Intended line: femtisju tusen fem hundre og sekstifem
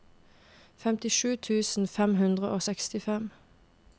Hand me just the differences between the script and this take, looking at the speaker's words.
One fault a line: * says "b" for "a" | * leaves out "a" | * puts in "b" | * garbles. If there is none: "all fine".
all fine